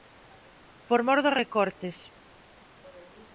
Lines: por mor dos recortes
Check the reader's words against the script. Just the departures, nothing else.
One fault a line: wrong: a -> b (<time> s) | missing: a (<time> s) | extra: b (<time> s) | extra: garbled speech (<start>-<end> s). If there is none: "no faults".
no faults